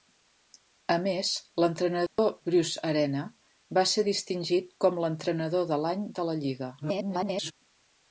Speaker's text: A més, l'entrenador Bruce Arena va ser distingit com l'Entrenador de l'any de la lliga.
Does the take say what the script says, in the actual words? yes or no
no